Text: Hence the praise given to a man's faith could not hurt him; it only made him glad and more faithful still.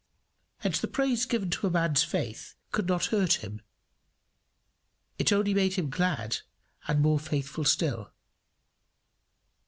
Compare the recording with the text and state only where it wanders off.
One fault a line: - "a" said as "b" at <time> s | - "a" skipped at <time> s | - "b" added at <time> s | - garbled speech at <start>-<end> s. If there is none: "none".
none